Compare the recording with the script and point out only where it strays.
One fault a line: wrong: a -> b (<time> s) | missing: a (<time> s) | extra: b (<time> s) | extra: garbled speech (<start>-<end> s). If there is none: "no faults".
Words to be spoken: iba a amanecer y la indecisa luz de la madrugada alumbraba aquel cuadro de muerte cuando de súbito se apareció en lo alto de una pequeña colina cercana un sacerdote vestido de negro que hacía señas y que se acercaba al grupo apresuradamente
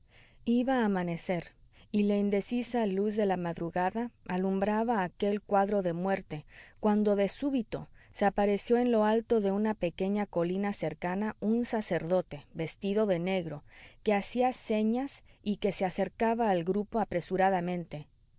no faults